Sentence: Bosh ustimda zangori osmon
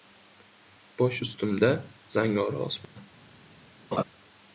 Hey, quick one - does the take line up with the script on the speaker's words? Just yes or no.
yes